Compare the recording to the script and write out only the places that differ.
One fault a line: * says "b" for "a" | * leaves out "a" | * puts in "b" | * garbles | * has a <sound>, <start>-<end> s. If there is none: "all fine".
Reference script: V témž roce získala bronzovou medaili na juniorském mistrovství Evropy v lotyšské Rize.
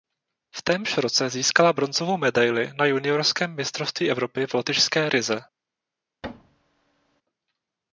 * has a thud, 6.2-7.2 s